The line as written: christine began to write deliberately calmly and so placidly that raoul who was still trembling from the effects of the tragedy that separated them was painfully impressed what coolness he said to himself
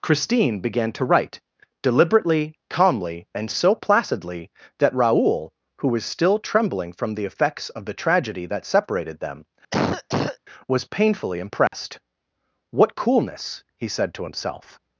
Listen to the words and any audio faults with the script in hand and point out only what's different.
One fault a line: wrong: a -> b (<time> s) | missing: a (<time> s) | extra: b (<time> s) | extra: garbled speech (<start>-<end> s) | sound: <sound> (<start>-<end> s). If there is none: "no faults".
sound: cough (9.7-10.4 s)
sound: dropout (11.7-11.7 s)